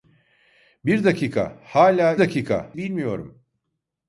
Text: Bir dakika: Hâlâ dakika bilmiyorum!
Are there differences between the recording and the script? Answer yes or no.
no